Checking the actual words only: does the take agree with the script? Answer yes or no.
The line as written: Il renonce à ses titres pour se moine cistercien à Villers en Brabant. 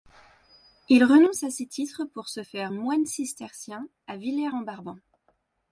no